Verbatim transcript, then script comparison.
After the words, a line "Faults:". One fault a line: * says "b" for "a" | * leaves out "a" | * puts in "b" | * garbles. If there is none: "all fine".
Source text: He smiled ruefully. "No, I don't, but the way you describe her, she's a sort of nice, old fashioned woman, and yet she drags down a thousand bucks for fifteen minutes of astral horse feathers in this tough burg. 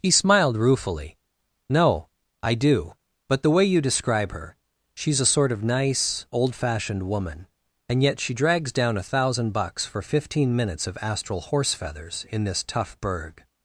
He smiled ruefully. "No, I do, but the way you describe her, she's a sort of nice, old fashioned woman, and yet she drags down a thousand bucks for fifteen minutes of astral horse feathers in this tough burg.
Faults:
* says "do" for "don't"